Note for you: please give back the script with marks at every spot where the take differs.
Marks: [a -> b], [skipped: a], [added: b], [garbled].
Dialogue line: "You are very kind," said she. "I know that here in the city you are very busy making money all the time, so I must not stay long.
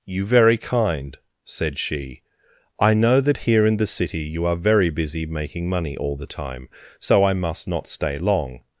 "You [skipped: are] very kind," said she. "I know that here in the city you are very busy making money all the time, so I must not stay long.